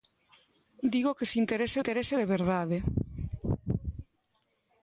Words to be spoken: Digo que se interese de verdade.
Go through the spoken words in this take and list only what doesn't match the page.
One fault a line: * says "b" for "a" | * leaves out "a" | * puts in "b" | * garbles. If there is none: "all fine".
* puts in "interese"